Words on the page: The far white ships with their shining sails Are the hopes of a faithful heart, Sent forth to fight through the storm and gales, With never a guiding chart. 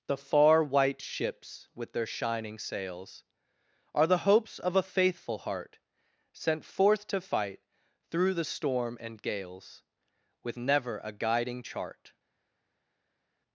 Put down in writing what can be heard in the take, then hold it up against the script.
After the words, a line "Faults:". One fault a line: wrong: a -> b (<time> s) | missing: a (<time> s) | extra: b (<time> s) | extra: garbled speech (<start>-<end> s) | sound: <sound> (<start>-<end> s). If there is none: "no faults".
The far white ships with their shining sails Are the hopes of a faithful heart, Sent forth to fight through the storm and gales, With never a guiding chart.
Faults:
no faults